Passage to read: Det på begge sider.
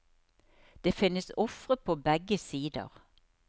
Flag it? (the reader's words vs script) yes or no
yes